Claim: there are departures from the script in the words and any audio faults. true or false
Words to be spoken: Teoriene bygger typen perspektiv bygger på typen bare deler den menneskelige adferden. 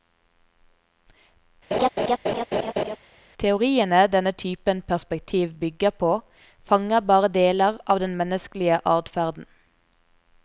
true